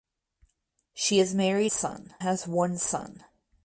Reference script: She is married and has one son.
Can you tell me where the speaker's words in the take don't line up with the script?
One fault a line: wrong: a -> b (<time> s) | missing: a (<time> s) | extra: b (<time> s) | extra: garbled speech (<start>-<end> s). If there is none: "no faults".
wrong: and -> son (1.7 s)